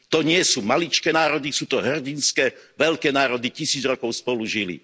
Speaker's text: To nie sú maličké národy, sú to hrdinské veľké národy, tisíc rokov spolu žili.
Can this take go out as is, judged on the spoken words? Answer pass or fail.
pass